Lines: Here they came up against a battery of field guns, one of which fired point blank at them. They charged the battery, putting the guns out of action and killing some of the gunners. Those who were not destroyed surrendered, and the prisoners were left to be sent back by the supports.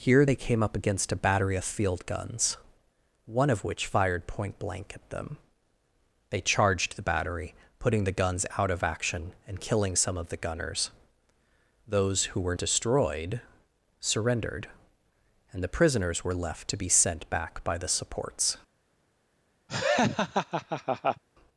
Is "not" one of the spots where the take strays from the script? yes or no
yes